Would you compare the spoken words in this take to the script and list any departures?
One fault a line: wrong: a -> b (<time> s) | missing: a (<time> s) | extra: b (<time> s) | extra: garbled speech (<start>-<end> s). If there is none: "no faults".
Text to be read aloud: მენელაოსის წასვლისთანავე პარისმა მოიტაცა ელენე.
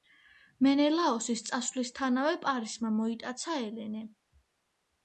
no faults